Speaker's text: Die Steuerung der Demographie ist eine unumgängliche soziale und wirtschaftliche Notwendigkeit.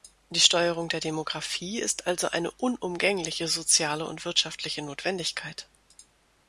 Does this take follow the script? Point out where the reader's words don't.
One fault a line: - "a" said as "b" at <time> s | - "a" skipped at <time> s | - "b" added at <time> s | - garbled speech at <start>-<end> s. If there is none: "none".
- "also" added at 2.1 s